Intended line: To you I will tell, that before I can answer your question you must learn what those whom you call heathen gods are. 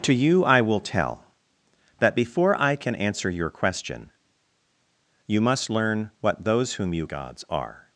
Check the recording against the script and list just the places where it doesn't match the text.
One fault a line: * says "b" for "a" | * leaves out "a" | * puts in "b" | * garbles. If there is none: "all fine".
* leaves out "call heathen"